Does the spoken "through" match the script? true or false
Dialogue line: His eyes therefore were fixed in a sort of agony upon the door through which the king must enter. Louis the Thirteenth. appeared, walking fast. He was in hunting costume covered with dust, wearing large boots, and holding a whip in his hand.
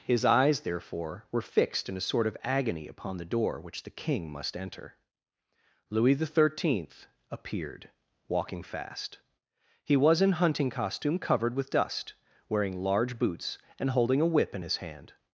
false